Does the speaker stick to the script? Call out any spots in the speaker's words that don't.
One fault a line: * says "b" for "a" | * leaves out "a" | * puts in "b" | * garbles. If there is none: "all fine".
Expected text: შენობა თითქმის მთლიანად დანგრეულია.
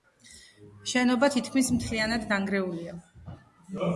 all fine